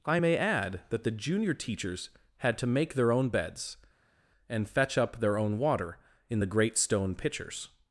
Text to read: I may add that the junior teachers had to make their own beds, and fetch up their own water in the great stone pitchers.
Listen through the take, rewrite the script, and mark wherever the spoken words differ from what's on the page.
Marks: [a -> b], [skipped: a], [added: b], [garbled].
I may add that the junior teachers had to make their own beds, and fetch up their own water in the great stone pitchers.